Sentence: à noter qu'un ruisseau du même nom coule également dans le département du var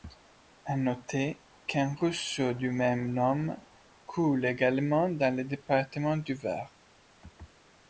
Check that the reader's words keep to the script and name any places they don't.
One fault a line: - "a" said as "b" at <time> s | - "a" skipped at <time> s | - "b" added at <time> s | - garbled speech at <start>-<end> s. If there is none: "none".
none